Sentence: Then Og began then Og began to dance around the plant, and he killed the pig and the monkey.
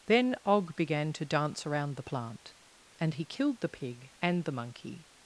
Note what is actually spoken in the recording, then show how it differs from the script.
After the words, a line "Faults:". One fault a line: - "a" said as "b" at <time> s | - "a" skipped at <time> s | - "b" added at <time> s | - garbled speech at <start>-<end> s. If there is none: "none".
Then Og began to dance around the plant, and he killed the pig and the monkey.
Faults:
- "then Og began" skipped at 1.1 s